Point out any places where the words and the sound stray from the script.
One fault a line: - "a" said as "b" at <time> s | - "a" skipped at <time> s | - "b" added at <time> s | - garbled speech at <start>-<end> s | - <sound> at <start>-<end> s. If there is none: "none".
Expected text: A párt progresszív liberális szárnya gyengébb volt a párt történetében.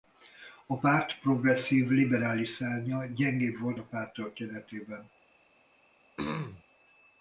- throat clearing at 6.2-6.6 s